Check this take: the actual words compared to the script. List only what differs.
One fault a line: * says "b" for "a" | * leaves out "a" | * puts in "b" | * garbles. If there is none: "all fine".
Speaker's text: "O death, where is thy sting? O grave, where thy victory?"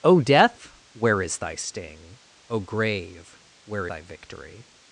all fine